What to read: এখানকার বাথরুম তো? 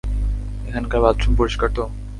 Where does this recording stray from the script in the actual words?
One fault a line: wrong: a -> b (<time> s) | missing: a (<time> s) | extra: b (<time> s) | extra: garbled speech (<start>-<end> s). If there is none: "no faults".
extra: পরিষ্কার (1.4 s)